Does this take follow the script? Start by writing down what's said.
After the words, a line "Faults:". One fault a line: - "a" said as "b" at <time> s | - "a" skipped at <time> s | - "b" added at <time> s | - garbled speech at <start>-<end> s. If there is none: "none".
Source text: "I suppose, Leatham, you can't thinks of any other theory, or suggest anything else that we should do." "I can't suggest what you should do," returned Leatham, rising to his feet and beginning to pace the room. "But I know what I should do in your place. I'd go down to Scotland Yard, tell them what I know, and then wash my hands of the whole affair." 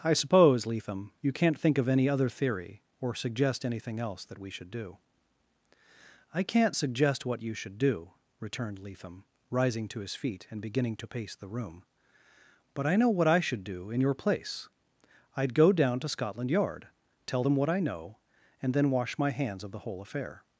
"I suppose, Leatham, you can't think of any other theory, or suggest anything else that we should do." "I can't suggest what you should do," returned Leatham, rising to his feet and beginning to pace the room. "But I know what I should do in your place. I'd go down to Scotland Yard, tell them what I know, and then wash my hands of the whole affair."
Faults:
- "thinks" said as "think" at 1.6 s